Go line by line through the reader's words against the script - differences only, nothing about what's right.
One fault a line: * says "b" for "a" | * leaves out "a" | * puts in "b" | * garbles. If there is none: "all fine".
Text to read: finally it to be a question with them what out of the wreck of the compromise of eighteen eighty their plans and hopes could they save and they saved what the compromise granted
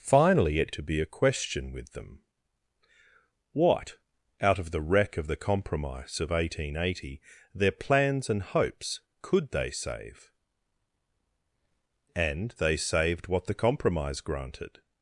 all fine